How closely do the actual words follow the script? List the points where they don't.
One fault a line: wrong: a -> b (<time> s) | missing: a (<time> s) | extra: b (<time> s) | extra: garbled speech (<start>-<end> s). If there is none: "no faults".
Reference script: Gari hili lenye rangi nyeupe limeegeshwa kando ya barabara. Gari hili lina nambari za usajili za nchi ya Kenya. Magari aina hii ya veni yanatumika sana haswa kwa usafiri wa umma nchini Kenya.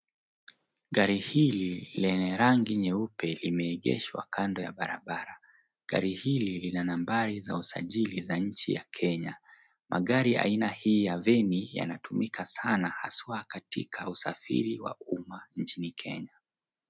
wrong: kwa -> katika (13.5 s)